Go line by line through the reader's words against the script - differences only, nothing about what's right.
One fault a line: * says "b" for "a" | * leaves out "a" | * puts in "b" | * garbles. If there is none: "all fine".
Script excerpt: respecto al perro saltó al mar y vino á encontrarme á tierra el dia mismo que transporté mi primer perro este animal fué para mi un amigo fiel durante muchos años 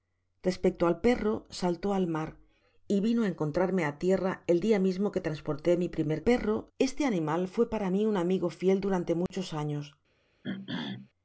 all fine